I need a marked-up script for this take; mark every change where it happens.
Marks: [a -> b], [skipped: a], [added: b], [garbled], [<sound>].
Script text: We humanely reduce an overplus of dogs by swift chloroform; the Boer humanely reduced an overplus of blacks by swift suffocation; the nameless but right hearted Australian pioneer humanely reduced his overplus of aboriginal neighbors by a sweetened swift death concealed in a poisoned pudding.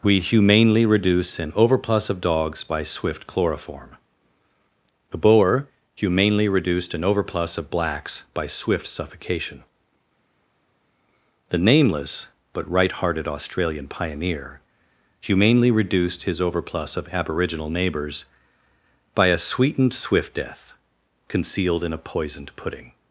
We humanely reduce an overplus of dogs by swift chloroform; the Boer humanely reduced an overplus of blacks by swift suffocation; the nameless but right hearted Australian pioneer humanely reduced his overplus of aboriginal neighbors by a sweetened swift death concealed in a poisoned pudding.